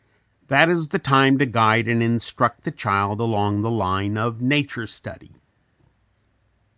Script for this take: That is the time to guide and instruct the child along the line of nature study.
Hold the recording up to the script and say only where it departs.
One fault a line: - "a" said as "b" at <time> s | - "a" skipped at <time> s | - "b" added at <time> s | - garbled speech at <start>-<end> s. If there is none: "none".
none